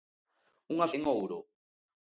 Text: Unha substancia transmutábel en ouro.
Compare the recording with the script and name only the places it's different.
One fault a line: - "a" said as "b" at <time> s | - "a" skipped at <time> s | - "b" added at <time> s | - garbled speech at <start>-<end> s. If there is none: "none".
- "substancia transmutábel" skipped at 0.9 s